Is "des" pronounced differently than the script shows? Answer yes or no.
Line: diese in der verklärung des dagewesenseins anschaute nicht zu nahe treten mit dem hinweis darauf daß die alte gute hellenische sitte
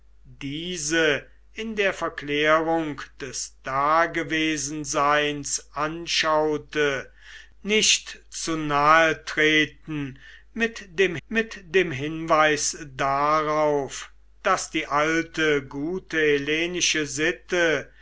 no